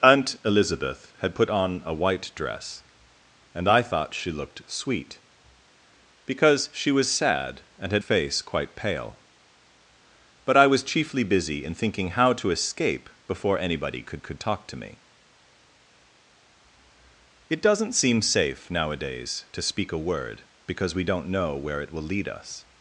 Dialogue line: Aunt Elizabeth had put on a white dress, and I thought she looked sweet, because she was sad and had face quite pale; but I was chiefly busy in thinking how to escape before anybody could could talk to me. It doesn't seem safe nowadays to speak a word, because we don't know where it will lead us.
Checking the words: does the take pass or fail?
pass